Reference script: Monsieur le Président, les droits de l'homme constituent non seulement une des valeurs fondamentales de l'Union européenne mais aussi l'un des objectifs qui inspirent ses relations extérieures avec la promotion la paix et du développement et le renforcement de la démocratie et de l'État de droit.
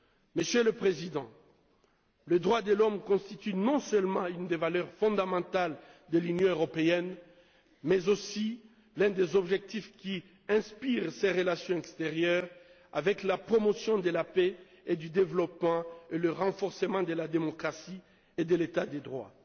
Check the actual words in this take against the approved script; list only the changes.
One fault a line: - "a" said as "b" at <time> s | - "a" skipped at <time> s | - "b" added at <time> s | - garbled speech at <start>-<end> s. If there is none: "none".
- "de" added at 14.0 s